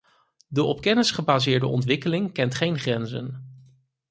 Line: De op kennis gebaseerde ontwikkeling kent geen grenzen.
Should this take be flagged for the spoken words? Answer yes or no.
no